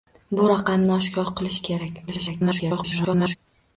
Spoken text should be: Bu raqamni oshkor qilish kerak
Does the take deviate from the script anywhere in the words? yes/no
yes